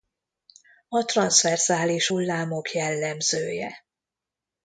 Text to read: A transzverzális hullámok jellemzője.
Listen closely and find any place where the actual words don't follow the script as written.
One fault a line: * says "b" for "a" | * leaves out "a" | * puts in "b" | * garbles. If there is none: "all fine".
all fine